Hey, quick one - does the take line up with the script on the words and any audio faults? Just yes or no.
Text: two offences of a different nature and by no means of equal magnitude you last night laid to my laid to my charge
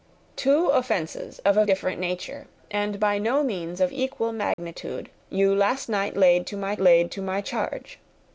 no